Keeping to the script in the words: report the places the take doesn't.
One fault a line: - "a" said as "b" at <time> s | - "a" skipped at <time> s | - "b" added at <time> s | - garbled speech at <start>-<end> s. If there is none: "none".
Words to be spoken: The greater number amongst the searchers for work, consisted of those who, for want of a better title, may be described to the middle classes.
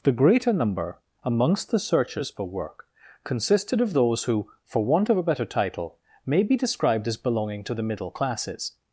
- "as belonging" added at 7.1 s